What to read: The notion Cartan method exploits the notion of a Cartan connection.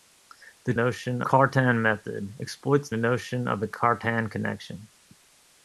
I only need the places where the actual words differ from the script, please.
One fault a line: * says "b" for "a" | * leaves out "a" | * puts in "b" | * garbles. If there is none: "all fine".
all fine